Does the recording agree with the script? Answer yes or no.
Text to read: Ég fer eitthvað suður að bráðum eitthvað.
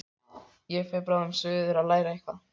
no